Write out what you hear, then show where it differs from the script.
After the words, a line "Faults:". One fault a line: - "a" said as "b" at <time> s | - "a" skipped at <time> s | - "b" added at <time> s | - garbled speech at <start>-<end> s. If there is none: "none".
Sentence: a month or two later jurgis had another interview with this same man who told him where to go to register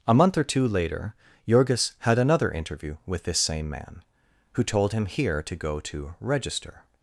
a month or two later jurgis had another interview with this same man who told him here to go to register
Faults:
- "where" said as "here" at 5.0 s